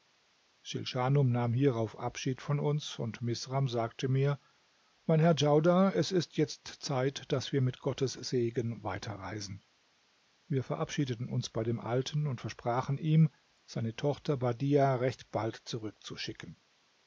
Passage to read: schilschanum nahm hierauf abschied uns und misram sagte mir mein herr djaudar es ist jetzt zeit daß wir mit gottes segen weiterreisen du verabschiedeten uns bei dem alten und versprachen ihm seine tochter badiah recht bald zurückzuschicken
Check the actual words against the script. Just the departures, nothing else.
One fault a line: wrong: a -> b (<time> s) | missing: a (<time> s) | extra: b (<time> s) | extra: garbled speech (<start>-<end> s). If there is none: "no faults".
extra: von (2.4 s)
wrong: du -> wir (10.5 s)